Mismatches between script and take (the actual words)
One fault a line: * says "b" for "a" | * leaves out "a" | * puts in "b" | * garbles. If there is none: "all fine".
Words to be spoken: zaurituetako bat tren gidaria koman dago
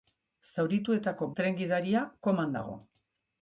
* leaves out "bat"